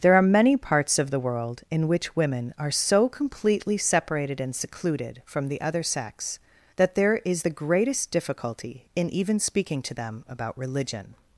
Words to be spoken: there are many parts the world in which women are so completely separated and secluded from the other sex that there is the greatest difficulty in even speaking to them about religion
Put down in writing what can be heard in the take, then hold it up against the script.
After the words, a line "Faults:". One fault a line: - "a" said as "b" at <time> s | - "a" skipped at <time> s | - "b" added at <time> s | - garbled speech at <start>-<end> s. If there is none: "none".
there are many parts of the world in which women are so completely separated and secluded from the other sex that there is the greatest difficulty in even speaking to them about religion
Faults:
- "of" added at 1.0 s